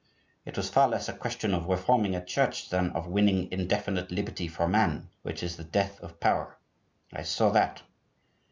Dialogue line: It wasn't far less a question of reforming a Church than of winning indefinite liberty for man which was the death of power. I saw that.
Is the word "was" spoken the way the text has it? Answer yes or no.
no